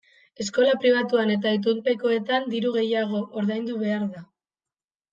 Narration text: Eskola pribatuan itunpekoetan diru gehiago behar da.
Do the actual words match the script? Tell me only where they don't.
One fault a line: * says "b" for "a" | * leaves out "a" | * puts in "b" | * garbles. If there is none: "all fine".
* puts in "eta"
* puts in "ordaindu"